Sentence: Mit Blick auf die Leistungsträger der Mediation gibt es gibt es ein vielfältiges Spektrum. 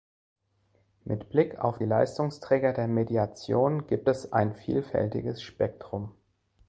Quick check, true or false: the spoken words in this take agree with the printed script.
false